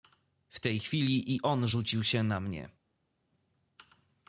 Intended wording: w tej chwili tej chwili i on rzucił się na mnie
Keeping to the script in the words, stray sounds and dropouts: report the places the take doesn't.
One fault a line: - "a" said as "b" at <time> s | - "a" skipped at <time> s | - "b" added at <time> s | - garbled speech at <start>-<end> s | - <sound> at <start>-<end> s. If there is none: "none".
- "tej chwili" skipped at 1.3 s